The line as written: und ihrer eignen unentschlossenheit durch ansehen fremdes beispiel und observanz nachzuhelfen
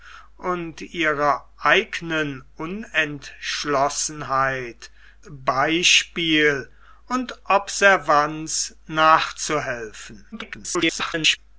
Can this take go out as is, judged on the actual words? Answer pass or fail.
fail